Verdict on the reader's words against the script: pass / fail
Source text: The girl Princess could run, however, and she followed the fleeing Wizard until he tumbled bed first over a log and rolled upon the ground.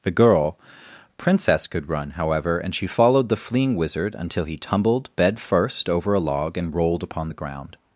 pass